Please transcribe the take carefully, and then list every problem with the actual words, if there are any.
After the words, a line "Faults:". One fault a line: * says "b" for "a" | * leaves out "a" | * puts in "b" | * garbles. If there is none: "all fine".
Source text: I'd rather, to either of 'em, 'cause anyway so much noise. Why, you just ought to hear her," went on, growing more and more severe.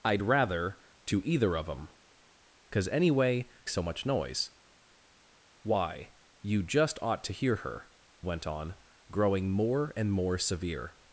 I'd rather, to either of 'em, 'cause anyway so much noise. Why, you just ought to hear her," went on, growing more and more severe.
Faults:
all fine